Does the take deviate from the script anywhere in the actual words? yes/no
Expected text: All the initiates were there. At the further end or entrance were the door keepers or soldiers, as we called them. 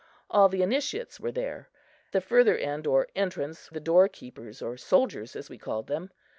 yes